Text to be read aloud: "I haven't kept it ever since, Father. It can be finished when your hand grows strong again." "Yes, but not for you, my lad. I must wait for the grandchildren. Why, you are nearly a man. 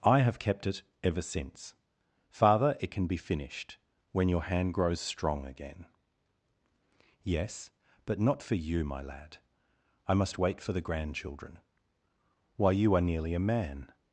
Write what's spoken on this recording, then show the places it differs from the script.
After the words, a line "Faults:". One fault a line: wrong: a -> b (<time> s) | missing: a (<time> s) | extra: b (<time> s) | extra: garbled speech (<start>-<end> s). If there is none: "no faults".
"I have kept it ever since, Father. It can be finished when your hand grows strong again." "Yes, but not for you, my lad. I must wait for the grandchildren. Why, you are nearly a man.
Faults:
wrong: haven't -> have (0.2 s)